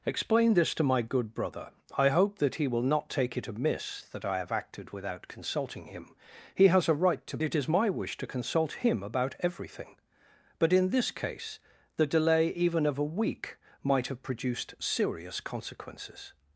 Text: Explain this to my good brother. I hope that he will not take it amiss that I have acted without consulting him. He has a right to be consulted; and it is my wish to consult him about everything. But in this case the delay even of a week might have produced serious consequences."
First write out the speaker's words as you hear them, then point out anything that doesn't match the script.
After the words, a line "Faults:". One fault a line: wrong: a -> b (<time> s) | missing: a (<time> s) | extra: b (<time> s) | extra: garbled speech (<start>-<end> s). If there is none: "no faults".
Explain this to my good brother. I hope that he will not take it amiss that I have acted without consulting him. He has a right to it is my wish to consult him about everything. But in this case the delay even of a week might have produced serious consequences."
Faults:
missing: be consulted and (7.4 s)